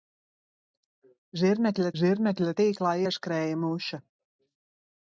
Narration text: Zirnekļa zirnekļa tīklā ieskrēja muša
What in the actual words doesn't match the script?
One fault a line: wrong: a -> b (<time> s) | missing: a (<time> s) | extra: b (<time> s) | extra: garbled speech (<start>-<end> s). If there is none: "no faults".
no faults